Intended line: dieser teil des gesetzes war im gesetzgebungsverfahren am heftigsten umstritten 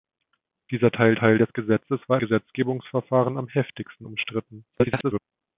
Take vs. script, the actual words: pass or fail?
fail